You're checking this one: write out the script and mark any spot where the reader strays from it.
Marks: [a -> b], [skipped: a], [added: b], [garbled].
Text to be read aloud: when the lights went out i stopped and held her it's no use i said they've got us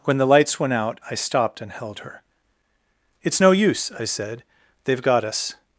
when the lights went out i stopped and held her it's no use i said they've got us